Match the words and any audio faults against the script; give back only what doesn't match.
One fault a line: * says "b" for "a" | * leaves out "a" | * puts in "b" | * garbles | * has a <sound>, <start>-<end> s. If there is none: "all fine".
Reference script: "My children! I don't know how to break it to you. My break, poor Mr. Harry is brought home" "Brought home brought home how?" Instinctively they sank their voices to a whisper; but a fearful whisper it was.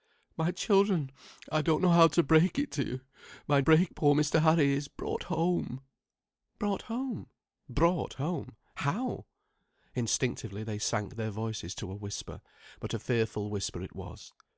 all fine